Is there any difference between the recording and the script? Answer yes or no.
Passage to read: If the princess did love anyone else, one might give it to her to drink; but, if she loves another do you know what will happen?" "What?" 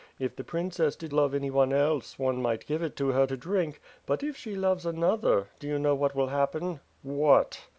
no